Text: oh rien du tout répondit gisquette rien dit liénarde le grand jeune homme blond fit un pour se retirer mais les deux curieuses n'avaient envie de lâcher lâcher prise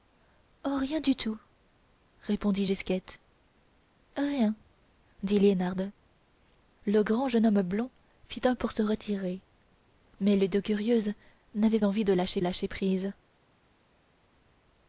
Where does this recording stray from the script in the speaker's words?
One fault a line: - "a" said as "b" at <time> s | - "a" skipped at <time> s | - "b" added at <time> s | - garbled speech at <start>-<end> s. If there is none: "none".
none